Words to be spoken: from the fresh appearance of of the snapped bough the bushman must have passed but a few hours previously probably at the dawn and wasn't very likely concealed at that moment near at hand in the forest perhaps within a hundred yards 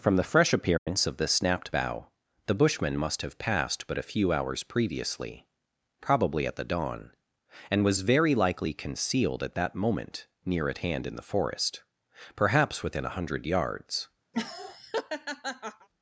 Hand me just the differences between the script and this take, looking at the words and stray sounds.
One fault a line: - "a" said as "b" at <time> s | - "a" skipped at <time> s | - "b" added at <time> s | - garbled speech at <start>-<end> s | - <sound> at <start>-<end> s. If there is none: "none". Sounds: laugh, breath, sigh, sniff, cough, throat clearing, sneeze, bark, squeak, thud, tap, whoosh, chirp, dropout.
- dropout at 0.8-0.9 s
- "of" skipped at 1.2 s
- "wasn't" said as "was" at 7.8 s
- laugh at 14.3-15.9 s